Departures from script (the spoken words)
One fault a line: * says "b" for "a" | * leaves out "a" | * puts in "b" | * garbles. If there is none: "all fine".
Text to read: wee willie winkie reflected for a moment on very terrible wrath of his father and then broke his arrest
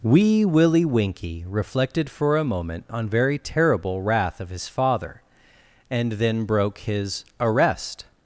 all fine